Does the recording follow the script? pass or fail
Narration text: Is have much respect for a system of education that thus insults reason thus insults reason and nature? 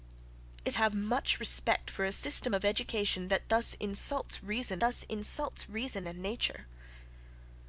pass